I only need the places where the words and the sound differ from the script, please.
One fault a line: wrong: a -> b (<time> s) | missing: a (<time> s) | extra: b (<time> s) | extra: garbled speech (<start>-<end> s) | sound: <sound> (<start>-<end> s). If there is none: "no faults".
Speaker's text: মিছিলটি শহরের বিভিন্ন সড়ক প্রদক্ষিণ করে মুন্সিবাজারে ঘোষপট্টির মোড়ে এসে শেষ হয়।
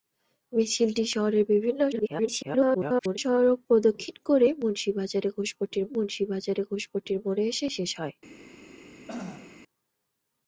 extra: garbled speech (1.9-3.2 s)
extra: মুন্সিবাজারে ঘোষপট্টির (5.9 s)
sound: throat clearing (9.1-9.6 s)